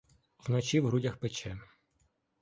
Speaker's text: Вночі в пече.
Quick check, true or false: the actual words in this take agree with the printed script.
false